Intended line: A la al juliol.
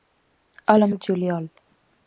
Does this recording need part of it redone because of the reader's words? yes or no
no